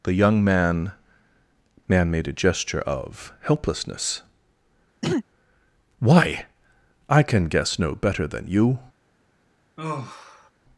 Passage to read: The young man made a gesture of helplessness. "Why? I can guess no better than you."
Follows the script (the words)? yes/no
no